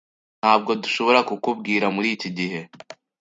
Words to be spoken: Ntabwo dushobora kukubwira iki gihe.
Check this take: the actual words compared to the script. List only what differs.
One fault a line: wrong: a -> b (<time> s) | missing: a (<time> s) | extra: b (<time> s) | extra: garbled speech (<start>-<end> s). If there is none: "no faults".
extra: muri (1.9 s)